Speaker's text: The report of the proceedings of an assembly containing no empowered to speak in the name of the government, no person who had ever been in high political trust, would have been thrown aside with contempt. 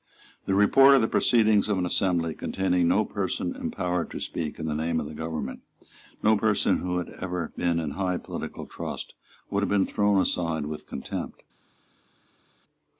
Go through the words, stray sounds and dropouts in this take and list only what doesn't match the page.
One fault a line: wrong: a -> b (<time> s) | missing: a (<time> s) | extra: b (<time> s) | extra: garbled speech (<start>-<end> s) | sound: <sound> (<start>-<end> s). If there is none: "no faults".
extra: person (3.0 s)